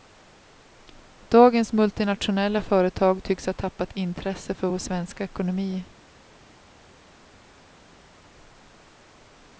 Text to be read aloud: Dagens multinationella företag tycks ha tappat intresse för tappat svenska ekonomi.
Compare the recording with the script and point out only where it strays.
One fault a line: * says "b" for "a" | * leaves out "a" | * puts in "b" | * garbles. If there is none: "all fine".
* says "vår" for "tappat"